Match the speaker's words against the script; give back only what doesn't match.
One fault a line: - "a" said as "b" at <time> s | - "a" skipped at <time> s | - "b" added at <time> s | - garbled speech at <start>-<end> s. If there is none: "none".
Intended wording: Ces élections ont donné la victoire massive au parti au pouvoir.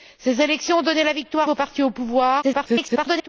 - "massive" skipped at 1.5 s
- garbled speech at 2.4-3.3 s